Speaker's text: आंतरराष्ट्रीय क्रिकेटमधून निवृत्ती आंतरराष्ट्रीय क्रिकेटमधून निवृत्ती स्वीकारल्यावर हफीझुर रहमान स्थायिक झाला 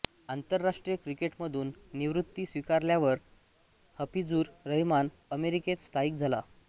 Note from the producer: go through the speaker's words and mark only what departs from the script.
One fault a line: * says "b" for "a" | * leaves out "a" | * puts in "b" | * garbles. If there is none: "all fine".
* leaves out "आंतरराष्ट्रीय क्रिकेटमधून निवृत्ती"
* puts in "अमेरिकेत"